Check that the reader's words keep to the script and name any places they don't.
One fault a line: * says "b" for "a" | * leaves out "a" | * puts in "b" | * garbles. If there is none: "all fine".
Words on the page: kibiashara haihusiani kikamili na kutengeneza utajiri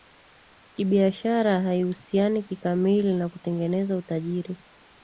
all fine